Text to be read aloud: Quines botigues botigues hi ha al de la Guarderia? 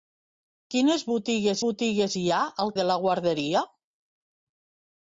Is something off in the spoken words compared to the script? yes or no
no